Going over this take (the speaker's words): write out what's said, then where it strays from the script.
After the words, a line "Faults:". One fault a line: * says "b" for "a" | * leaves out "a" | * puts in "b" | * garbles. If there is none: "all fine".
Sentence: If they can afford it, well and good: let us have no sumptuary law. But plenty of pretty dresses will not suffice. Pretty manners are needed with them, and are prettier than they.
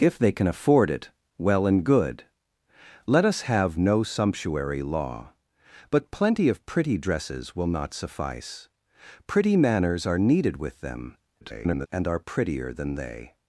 If they can afford it, well and good: let us have no sumptuary law. But plenty of pretty dresses will not suffice. Pretty manners are needed with them, [garbled] and are prettier than they.
Faults:
* garbles